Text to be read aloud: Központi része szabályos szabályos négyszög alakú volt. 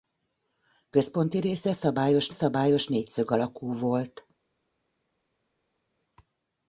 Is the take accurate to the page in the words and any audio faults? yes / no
yes